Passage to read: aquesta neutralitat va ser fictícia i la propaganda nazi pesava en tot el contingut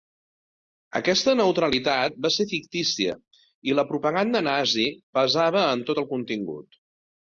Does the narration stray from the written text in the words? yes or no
no